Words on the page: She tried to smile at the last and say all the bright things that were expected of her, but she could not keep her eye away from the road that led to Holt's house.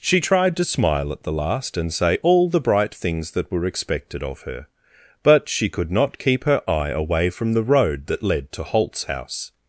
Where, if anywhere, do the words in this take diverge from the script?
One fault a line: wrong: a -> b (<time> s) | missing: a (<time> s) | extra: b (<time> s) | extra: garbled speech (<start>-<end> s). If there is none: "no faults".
no faults